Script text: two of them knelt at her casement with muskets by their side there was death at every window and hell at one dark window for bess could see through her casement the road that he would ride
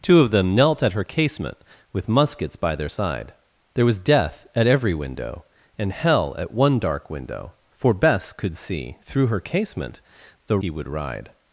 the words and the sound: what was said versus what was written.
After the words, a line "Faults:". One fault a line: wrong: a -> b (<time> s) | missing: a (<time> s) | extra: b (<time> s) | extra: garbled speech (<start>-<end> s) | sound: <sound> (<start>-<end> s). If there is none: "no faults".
two of them knelt at her casement with muskets by their side there was death at every window and hell at one dark window for bess could see through her casement the he would ride
Faults:
missing: road that (10.6 s)